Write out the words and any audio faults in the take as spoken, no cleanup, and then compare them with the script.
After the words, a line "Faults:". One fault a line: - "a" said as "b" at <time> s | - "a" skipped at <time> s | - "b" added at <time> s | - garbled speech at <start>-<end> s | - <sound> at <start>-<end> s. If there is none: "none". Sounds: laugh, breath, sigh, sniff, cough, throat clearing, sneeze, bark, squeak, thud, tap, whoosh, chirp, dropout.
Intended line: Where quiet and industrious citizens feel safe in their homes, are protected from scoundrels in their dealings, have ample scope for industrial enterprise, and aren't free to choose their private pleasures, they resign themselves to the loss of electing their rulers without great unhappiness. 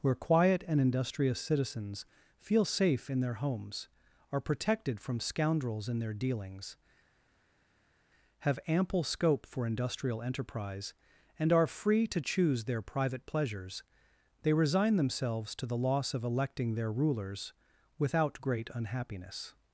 Where quiet and industrious citizens feel safe in their homes, are protected from scoundrels in their dealings, have ample scope for industrial enterprise, and are free to choose their private pleasures, they resign themselves to the loss of electing their rulers without great unhappiness.
Faults:
- "aren't" said as "are" at 11.5 s